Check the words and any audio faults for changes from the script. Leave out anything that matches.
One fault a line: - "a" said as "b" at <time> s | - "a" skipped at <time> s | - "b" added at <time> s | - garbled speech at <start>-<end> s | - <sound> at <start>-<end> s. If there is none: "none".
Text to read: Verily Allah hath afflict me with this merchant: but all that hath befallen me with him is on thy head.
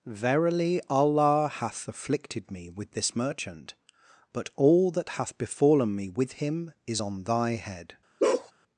- "afflict" said as "afflicted" at 1.9 s
- bark at 8.2-8.5 s